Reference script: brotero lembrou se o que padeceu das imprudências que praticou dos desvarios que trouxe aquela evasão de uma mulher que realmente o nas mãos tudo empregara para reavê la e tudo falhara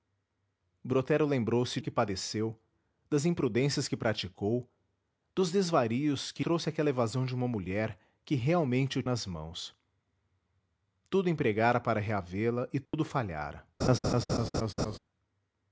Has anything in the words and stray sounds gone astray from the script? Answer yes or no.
yes